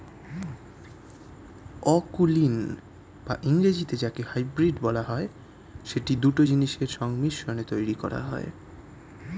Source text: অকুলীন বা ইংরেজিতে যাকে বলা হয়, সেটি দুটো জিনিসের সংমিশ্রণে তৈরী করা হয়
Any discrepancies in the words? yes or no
yes